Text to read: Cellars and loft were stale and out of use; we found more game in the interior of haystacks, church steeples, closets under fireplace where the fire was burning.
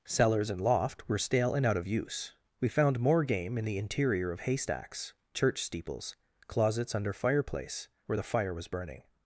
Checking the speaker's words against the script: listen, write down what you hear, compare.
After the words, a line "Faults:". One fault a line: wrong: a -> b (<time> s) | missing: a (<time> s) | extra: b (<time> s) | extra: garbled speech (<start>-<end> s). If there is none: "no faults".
Cellars and loft were stale and out of use; we found more game in the interior of haystacks, church steeples, closets under fireplace where the fire was burning.
Faults:
no faults